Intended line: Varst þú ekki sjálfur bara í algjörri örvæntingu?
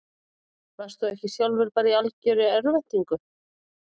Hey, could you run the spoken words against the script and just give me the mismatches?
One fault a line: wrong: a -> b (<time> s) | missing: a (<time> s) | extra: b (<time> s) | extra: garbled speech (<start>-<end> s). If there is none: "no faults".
no faults